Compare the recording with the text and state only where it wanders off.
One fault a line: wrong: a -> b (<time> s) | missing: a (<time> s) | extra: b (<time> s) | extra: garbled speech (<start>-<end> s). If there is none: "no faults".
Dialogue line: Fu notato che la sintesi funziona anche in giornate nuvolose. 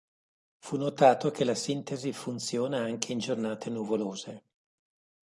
no faults